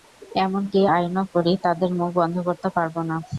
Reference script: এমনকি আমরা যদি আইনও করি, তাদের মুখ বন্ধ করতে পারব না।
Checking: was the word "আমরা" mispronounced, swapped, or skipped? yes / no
yes